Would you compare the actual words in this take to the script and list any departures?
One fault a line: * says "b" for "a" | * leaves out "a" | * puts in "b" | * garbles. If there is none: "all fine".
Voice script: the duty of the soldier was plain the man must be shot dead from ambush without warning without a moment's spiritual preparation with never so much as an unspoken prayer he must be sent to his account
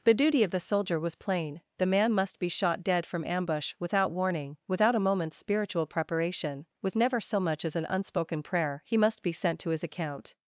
all fine